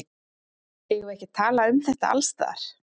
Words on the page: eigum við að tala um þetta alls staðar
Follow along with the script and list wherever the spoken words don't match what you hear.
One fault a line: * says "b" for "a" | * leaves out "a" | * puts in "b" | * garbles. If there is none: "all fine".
* puts in "ekki"